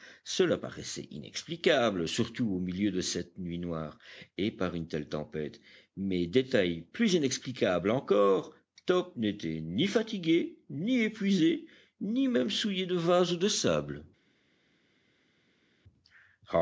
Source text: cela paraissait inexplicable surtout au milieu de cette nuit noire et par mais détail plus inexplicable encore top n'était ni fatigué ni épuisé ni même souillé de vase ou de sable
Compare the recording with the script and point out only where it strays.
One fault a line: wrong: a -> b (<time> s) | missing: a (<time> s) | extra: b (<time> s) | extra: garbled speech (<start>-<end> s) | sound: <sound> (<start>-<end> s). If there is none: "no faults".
extra: une telle tempête (4.7 s)